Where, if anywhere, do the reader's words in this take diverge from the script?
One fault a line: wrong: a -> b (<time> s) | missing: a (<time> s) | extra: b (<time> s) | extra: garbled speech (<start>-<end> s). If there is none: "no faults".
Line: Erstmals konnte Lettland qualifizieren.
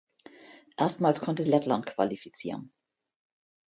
no faults